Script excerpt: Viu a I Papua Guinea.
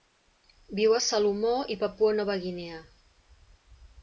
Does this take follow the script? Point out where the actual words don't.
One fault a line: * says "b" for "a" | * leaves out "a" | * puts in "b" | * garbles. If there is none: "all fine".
* puts in "Salomó"
* puts in "Nova"